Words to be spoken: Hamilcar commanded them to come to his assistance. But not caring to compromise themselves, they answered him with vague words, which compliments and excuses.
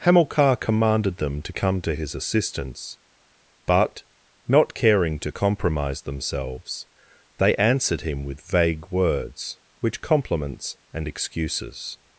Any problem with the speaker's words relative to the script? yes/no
no